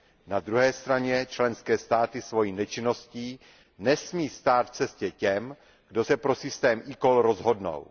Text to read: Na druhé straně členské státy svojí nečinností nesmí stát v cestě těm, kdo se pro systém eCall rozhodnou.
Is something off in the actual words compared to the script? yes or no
no